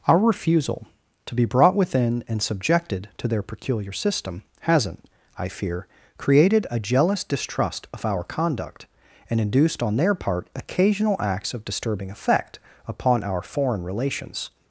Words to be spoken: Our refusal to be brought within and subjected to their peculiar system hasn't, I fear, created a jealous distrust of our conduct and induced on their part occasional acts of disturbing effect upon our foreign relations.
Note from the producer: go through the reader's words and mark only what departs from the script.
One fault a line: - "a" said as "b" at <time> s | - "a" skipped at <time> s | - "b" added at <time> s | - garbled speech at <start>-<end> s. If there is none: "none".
none